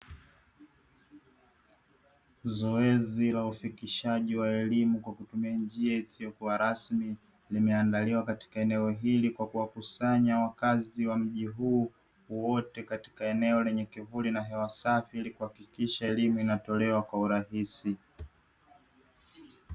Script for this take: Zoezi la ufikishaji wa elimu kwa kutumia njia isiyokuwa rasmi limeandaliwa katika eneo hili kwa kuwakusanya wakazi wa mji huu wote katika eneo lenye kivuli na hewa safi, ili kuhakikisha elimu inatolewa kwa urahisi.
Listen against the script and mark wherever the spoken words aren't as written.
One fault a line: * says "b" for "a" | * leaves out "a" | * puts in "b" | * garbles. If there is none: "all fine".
all fine